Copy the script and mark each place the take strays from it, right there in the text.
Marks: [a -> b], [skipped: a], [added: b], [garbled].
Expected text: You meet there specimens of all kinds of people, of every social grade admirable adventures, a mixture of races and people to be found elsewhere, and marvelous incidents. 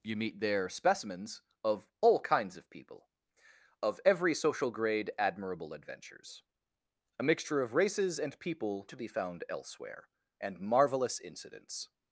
You meet there specimens of all kinds of people, of every social grade admirable adventures, a mixture of races and people to be found elsewhere, and marvelous incidents.